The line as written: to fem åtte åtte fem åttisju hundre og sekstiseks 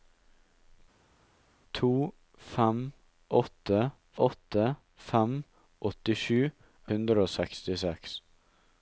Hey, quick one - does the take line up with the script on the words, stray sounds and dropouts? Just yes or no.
yes